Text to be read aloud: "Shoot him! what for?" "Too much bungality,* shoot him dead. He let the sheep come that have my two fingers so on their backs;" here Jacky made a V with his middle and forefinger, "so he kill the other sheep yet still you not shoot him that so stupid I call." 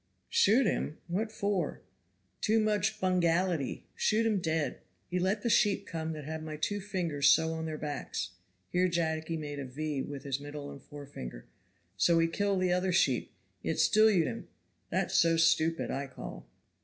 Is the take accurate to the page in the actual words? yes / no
no